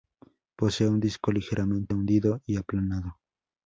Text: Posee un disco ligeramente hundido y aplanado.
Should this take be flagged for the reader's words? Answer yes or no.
no